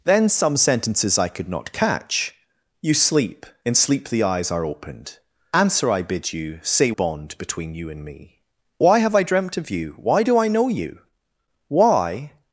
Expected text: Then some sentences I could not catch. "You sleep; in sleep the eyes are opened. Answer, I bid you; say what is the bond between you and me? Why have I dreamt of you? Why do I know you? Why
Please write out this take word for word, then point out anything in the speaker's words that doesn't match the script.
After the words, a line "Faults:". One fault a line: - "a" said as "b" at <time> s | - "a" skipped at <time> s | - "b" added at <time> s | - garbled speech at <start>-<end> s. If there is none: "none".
Then some sentences I could not catch. "You sleep; in sleep the eyes are opened. Answer, I bid you; say bond between you and me? Why have I dreamt of you? Why do I know you? Why
Faults:
- "what is the" skipped at 6.9 s